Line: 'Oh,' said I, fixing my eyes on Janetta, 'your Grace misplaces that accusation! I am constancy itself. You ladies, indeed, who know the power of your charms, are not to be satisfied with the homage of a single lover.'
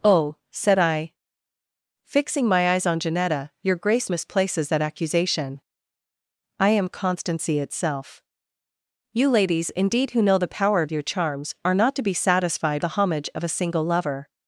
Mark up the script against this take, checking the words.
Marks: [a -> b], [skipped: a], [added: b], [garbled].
'Oh,' said I, fixing my eyes on Janetta, 'your Grace misplaces that accusation! I am constancy itself. You ladies, indeed, who know the power of your charms, are not to be satisfied [skipped: with] the homage of a single lover.'